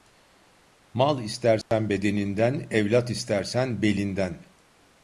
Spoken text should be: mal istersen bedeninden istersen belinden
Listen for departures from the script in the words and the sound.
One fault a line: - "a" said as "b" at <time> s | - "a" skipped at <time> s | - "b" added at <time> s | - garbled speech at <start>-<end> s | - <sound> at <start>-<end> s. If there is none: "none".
- dropout at 1.6-1.7 s
- "evlat" added at 2.7 s